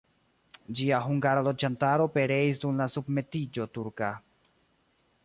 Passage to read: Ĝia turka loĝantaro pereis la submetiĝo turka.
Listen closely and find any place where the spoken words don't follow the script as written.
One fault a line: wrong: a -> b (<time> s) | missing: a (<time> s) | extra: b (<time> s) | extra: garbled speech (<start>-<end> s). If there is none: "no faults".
wrong: turka -> hungara (1.1 s)
extra: dum (2.6 s)